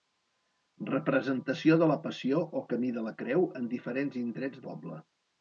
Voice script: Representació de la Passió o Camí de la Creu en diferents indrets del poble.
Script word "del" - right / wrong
wrong